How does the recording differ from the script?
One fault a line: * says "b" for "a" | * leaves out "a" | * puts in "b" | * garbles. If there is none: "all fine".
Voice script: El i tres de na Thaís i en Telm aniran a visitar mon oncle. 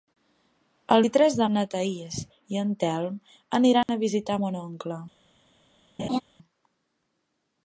all fine